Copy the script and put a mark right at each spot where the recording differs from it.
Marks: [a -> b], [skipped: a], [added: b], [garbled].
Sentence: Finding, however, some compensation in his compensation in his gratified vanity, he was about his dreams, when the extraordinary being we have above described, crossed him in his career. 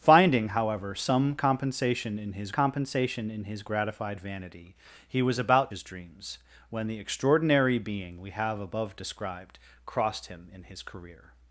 Finding, however, some compensation in his compensation in his gratified vanity, he was about his dreams, when the extraordinary being we have above described, crossed him in his career.